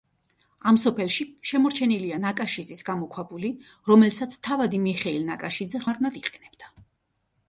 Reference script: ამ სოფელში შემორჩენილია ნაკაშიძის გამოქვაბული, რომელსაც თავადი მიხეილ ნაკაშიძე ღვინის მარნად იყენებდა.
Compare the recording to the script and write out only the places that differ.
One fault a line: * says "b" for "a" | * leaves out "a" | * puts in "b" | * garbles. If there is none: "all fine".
* leaves out "ღვინის"